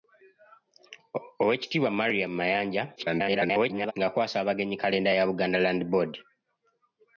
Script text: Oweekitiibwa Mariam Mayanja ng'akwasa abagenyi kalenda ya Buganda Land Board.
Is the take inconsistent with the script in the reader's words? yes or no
yes